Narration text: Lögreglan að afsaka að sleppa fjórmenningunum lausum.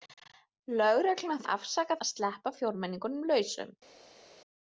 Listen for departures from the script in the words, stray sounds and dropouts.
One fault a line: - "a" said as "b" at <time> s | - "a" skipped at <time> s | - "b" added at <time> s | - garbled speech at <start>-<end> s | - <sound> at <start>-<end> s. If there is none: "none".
none